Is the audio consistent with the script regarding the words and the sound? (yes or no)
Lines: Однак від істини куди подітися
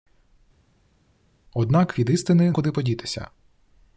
yes